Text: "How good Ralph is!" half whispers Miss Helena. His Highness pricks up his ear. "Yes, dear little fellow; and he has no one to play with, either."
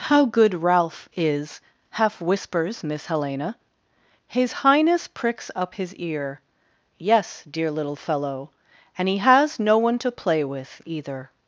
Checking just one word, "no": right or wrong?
right